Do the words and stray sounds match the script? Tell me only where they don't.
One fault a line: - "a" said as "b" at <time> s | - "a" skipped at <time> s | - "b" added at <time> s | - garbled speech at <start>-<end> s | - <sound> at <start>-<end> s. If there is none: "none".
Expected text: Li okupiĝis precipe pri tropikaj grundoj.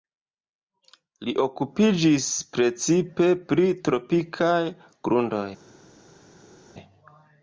none